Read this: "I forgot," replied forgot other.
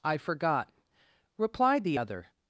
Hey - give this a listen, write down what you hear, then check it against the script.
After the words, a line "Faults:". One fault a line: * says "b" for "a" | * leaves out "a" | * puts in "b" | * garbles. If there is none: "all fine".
"I forgot," replied the other.
Faults:
* says "the" for "forgot"